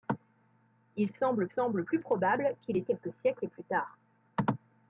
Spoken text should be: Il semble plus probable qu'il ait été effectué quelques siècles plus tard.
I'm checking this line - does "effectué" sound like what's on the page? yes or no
no